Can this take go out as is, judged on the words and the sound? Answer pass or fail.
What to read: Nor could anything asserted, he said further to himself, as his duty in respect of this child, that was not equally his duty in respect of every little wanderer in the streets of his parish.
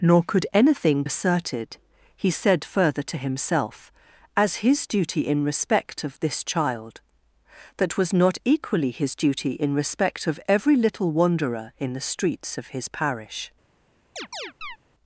fail